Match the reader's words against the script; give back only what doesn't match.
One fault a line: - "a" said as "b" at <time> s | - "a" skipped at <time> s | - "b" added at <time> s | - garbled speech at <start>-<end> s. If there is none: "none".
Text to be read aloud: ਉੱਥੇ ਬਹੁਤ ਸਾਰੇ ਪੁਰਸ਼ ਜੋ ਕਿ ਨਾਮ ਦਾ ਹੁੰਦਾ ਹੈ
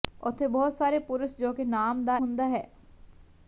none